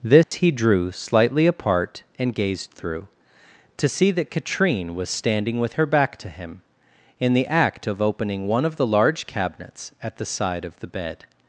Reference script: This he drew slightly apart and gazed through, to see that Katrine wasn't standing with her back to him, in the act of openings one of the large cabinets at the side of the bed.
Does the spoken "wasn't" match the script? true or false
false